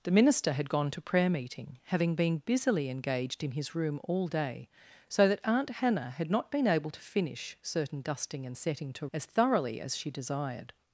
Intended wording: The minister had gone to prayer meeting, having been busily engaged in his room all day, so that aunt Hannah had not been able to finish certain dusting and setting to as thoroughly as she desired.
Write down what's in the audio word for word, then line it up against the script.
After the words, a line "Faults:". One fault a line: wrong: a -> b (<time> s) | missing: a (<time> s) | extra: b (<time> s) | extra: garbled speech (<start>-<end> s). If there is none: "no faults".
The minister had gone to prayer meeting, having been busily engaged in his room all day, so that aunt Hannah had not been able to finish certain dusting and setting to as thoroughly as she desired.
Faults:
no faults